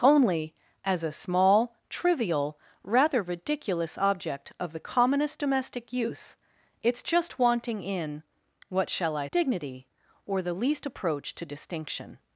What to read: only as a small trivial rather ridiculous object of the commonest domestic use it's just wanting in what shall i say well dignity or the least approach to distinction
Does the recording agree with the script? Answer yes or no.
no